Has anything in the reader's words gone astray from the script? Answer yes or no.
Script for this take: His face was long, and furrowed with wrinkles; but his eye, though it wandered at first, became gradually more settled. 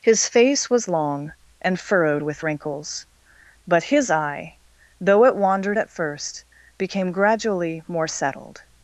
no